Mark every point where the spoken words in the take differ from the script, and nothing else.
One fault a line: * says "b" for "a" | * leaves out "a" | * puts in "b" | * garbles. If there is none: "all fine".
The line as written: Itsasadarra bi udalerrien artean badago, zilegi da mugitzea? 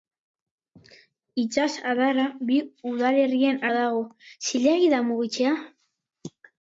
* leaves out "artean"